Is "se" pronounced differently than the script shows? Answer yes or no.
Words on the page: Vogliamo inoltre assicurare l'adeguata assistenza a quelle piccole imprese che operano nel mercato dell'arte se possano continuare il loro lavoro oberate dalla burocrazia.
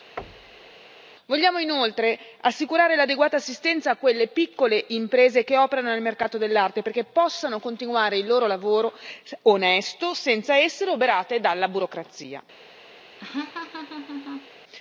yes